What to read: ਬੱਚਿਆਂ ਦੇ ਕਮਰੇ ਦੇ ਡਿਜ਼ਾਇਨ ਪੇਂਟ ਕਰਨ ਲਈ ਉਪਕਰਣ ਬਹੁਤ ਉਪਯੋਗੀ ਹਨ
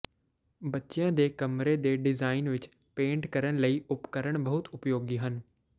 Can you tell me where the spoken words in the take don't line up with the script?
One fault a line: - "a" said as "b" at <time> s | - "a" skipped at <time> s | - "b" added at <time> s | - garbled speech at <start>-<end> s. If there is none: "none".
- "ਵਿੱਚ" added at 2.5 s